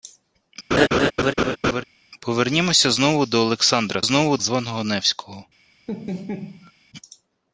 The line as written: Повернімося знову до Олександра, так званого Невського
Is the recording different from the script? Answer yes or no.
yes